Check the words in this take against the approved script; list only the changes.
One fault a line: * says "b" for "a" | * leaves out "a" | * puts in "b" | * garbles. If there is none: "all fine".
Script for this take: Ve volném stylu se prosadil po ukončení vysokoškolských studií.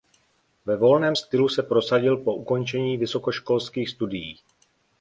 all fine